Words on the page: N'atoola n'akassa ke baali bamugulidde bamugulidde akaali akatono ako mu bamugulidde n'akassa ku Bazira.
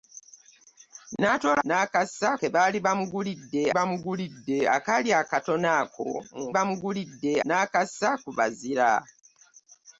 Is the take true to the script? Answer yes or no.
yes